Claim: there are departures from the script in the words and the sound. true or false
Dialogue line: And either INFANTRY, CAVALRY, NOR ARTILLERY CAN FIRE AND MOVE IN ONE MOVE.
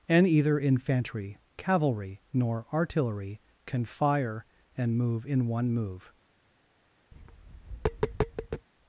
true